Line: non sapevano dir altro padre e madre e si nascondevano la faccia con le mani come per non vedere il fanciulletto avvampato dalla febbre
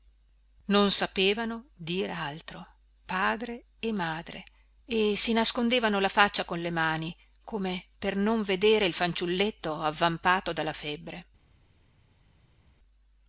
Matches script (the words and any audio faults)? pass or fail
pass